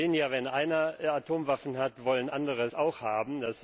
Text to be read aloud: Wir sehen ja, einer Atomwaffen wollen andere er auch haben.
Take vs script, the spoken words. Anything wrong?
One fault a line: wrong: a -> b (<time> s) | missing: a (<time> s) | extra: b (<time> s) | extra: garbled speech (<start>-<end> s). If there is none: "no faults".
extra: wenn (0.3 s)
extra: hat (1.8 s)
wrong: er -> sie (2.6 s)